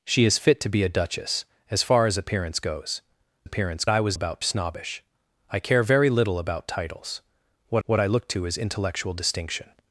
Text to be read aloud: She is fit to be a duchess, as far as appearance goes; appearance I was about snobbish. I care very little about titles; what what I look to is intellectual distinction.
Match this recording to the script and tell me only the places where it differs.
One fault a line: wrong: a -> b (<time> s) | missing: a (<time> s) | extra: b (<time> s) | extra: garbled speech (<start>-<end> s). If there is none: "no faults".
no faults